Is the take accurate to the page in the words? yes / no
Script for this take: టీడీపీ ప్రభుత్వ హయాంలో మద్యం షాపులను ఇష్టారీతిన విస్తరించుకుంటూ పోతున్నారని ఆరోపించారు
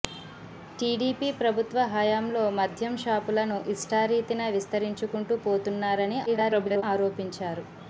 no